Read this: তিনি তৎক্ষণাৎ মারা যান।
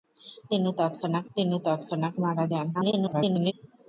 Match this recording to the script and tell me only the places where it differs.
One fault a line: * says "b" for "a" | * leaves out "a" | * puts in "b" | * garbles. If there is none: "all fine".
* puts in "তিনি তৎক্ষণাৎ"
* garbles